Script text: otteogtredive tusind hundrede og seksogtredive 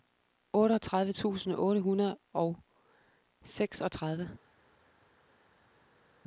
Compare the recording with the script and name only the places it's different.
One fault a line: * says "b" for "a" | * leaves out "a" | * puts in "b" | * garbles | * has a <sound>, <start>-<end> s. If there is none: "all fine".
* puts in "otte"